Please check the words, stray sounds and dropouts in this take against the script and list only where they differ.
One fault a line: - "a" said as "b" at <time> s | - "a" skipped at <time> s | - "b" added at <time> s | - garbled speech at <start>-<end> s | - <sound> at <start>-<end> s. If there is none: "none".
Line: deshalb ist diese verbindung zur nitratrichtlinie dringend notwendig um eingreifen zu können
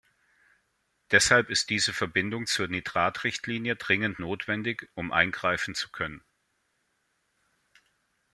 none